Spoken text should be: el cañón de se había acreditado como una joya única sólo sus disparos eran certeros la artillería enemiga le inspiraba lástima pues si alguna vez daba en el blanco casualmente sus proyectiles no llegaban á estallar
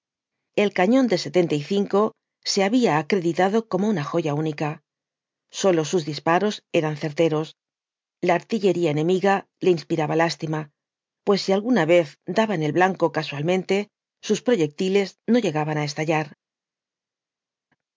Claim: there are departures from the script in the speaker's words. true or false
false